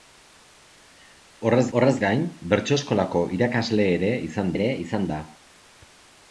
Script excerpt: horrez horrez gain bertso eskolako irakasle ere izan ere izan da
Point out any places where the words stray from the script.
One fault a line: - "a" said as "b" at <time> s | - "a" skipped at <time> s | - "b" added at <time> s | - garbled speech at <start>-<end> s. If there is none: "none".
none